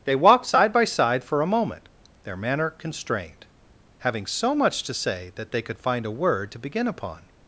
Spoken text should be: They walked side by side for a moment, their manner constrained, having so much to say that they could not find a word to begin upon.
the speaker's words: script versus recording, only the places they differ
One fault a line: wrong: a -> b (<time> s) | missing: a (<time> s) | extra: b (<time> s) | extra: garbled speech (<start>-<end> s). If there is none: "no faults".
missing: not (5.8 s)